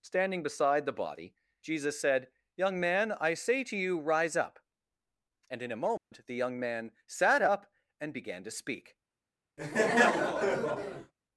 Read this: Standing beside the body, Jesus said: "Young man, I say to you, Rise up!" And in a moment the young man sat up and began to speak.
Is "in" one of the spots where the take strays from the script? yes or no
no